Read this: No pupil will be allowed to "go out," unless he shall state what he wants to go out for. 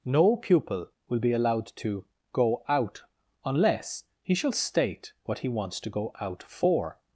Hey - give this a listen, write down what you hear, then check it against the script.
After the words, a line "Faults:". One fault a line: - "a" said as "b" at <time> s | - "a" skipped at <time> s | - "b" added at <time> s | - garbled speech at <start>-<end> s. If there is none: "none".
No pupil will be allowed to "go out," unless he shall state what he wants to go out for.
Faults:
none